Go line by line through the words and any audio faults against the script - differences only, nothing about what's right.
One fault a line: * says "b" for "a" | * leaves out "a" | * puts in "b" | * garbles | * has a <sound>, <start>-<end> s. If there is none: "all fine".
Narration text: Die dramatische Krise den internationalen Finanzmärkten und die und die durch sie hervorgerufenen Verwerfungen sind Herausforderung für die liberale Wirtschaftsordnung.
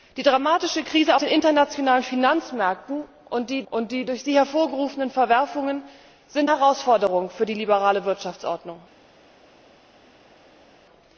all fine